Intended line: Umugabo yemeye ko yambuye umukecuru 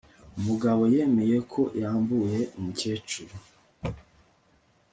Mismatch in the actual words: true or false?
false